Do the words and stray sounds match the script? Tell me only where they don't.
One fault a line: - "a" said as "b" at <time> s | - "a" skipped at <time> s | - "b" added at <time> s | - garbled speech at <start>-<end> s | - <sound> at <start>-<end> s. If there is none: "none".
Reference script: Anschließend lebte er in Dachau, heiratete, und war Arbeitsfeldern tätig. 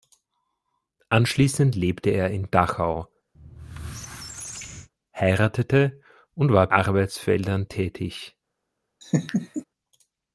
- squeak at 3.3-4.9 s
- laugh at 9.0-9.6 s